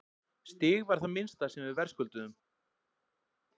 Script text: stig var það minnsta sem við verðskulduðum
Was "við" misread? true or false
false